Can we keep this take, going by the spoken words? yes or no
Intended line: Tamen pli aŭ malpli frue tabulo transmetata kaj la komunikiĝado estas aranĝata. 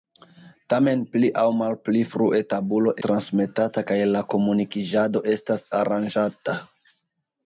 yes